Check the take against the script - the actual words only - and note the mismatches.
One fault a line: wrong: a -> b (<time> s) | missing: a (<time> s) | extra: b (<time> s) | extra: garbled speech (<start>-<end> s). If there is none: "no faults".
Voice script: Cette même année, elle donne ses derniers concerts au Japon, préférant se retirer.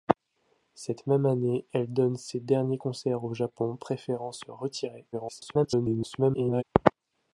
extra: garbled speech (5.1-6.6 s)